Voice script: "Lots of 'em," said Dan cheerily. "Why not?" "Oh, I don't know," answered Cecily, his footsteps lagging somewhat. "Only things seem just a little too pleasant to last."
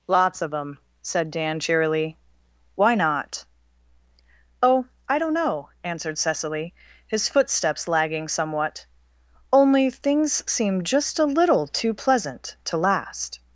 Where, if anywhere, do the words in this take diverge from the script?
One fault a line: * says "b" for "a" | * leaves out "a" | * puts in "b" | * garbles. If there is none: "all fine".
all fine